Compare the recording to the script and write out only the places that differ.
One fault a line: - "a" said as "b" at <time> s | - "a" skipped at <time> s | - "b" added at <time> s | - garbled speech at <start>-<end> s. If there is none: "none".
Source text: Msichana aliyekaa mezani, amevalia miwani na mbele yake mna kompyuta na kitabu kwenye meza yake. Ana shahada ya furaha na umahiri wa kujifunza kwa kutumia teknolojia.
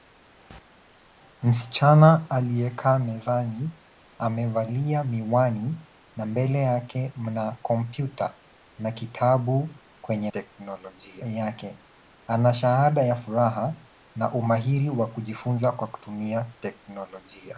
- "meza" said as "teknolojia" at 10.3 s